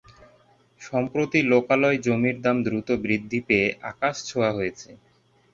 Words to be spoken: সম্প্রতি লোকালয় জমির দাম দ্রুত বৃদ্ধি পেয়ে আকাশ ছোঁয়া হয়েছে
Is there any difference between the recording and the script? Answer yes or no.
no